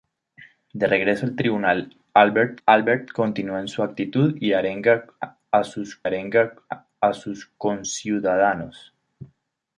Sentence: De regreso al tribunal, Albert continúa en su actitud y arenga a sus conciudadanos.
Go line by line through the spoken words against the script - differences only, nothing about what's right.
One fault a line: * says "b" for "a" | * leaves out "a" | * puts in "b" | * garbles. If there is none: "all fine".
* puts in "Albert"
* puts in "arenga a sus"